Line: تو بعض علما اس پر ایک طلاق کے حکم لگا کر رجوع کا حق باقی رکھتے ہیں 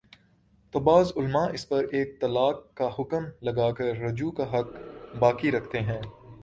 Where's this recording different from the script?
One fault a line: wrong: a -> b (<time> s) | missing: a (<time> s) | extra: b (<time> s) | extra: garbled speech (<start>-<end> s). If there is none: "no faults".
wrong: کے -> کا (2.7 s)